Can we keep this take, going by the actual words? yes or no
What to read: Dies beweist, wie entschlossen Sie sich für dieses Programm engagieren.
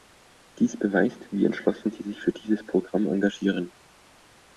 yes